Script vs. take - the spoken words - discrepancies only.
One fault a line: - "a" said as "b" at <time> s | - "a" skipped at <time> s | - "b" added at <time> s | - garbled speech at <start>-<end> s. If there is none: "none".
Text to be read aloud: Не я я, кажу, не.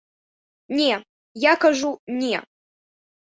- "я" skipped at 1.6 s